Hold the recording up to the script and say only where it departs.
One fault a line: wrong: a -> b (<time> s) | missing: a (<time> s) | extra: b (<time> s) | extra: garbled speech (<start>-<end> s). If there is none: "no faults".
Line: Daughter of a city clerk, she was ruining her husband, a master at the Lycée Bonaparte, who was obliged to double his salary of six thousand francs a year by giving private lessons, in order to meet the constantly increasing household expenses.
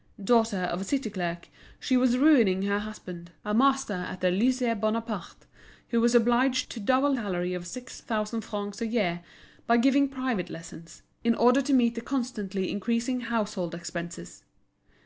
missing: his (7.2 s)